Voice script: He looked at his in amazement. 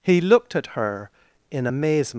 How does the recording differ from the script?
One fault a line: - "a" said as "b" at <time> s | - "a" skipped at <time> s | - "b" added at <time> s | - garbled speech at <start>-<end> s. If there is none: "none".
- "his" said as "her" at 0.7 s